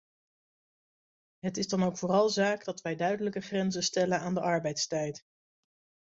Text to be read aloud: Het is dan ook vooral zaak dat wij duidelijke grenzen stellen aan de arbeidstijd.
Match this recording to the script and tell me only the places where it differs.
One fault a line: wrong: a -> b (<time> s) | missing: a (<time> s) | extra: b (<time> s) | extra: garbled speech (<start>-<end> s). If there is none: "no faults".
no faults